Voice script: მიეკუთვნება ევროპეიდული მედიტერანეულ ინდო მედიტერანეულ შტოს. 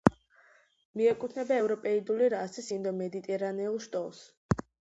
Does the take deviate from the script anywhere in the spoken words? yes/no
yes